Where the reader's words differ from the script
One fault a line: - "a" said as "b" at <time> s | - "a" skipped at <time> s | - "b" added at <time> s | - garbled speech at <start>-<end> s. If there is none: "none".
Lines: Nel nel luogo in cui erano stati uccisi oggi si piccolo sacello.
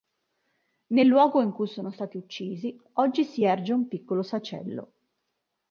- "nel" skipped at 1.1 s
- "erano" said as "sono" at 1.7 s
- "erge un" added at 3.4 s